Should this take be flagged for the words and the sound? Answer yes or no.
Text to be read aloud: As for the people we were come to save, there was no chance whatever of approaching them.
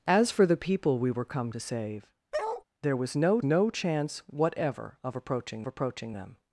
yes